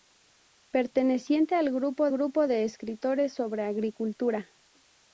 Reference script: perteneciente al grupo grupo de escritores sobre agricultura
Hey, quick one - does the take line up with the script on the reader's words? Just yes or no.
yes